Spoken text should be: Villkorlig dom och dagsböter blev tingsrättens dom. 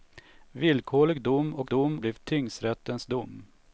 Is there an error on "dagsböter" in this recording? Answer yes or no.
yes